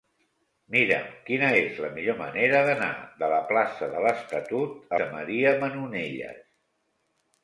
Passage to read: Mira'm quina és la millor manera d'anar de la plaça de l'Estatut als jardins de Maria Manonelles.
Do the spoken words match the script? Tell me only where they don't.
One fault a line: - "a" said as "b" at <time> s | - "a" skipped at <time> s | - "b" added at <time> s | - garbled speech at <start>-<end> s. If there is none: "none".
- "als jardins" skipped at 5.0 s